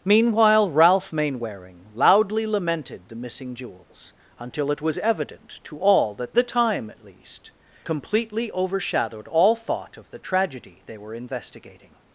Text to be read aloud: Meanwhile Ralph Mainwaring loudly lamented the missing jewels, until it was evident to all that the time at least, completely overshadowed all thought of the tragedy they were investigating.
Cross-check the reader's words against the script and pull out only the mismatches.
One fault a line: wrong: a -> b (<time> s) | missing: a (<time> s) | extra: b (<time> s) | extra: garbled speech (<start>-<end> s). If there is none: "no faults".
no faults